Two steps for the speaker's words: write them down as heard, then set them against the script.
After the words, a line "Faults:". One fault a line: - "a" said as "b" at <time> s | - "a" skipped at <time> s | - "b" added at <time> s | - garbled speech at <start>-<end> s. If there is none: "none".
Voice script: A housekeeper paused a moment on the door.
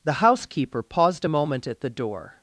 The housekeeper paused a moment at the door.
Faults:
- "A" said as "The" at 0.0 s
- "on" said as "at" at 1.7 s